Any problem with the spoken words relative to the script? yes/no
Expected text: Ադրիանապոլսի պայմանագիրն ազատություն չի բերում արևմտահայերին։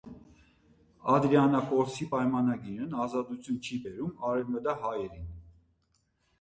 no